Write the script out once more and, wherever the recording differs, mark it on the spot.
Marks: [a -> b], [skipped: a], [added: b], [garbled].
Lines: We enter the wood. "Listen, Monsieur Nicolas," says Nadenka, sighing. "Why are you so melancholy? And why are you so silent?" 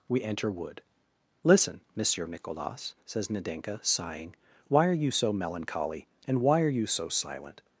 We enter [skipped: the] wood. "Listen, Monsieur Nicolas," says Nadenka, sighing. "Why are you so melancholy? And why are you so silent?"